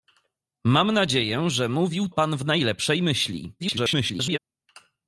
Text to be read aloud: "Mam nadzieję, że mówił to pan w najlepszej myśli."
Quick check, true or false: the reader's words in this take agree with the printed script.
false